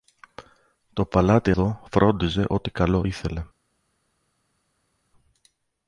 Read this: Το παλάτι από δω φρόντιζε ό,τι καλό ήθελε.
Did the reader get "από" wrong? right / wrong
wrong